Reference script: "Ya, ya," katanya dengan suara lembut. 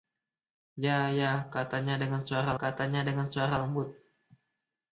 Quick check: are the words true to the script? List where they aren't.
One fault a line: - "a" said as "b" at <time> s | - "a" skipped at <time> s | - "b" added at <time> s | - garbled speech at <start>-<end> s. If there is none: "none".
- "katanya dengan suara" added at 2.6 s